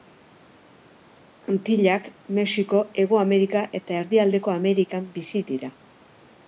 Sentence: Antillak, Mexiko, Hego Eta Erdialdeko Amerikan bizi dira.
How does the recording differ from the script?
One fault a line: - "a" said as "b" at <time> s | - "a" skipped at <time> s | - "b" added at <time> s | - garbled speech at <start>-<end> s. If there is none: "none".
- "Amerika" added at 3.3 s